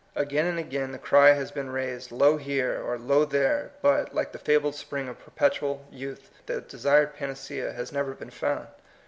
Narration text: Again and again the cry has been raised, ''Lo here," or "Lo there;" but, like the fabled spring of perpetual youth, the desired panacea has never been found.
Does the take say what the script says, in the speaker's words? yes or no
yes